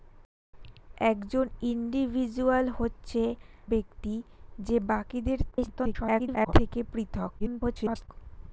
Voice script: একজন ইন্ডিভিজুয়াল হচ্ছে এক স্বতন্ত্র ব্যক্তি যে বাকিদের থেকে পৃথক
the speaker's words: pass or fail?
fail